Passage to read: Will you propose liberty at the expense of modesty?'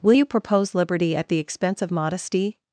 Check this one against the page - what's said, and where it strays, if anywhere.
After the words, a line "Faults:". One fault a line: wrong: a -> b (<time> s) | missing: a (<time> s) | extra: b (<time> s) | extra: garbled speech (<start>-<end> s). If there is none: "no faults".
Will you propose liberty at the expense of modesty?'
Faults:
no faults